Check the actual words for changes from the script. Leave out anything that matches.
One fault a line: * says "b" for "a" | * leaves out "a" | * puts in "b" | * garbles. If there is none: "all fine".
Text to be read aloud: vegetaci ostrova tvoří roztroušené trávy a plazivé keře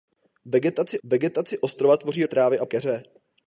* puts in "vegetaci"
* leaves out "roztroušené"
* leaves out "plazivé"